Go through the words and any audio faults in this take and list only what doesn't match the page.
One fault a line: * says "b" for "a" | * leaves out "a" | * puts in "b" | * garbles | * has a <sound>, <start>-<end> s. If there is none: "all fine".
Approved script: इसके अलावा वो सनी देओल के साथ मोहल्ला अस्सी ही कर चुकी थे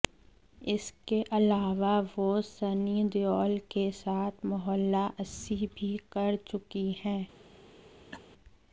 * says "भी" for "ही"
* says "हैं" for "थे"
* has a laugh, 8.1-8.2 s